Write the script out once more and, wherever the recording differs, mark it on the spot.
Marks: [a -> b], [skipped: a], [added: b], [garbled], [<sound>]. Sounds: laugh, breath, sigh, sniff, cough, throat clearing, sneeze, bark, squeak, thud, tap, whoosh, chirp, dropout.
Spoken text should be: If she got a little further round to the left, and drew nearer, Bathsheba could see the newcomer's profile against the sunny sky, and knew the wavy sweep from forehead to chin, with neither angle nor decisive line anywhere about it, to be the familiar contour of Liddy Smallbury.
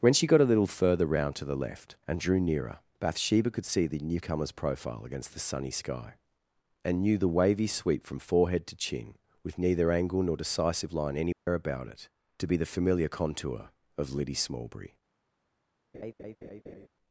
[If -> When] she got a little further round to the left, and drew nearer, Bathsheba could see the newcomer's profile against the sunny sky, and knew the wavy sweep from forehead to chin, with neither angle nor decisive line anywhere [dropout] about it, to be the familiar contour of Liddy Smallbury. [laugh]